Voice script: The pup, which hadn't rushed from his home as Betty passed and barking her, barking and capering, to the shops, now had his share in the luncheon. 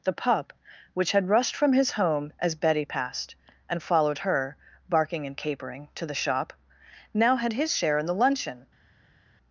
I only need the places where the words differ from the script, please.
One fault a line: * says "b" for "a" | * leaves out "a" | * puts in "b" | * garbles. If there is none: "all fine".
* says "had" for "hadn't"
* says "followed" for "barking"
* says "shop" for "shops"